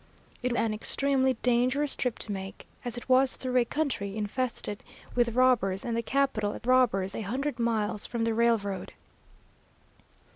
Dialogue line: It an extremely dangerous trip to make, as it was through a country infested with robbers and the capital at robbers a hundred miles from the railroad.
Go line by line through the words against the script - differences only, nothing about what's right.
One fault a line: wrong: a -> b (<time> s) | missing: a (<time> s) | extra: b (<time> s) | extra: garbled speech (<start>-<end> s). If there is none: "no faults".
no faults